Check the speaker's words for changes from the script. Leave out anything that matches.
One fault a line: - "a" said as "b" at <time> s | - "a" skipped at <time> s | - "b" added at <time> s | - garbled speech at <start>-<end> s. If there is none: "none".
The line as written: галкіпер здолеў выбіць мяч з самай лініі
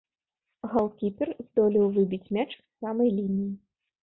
none